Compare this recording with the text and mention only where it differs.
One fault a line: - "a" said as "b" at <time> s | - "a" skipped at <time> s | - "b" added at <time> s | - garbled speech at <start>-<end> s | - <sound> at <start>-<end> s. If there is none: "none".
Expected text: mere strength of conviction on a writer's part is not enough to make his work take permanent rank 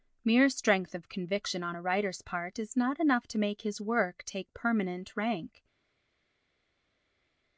none